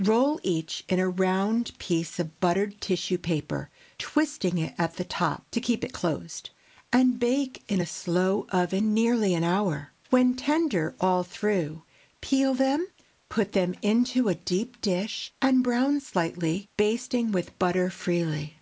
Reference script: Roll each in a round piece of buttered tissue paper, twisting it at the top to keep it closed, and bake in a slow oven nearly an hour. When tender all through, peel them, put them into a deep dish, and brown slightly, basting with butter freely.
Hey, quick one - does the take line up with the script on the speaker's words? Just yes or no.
yes